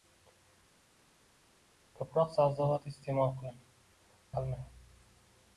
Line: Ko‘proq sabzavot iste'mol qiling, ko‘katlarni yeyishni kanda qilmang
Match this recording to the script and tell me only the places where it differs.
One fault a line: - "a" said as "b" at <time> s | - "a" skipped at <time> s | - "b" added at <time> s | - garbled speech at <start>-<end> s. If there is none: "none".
- "ko‘katlarni yeyishni kanda" skipped at 3.6 s